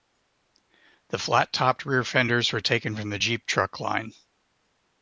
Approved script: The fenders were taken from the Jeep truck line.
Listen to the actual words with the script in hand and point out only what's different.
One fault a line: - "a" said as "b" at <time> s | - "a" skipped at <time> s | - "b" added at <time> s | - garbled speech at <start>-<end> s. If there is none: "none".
- "flat topped rear" added at 1.2 s